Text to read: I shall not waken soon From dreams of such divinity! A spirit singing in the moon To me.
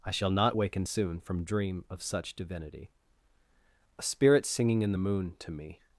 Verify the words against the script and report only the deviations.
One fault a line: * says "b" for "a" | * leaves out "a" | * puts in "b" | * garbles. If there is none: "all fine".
* says "dream" for "dreams"